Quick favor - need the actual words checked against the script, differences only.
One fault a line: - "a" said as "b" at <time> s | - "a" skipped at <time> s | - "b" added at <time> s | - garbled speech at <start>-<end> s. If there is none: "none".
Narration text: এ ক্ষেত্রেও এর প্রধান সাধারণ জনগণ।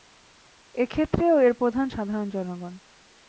none